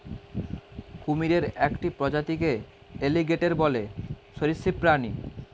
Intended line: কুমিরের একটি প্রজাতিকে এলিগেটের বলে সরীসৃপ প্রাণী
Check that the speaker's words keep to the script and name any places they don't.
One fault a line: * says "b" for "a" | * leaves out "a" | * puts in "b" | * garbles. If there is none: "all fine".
all fine